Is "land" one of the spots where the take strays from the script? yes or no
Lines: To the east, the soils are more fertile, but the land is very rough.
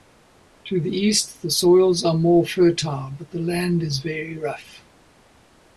no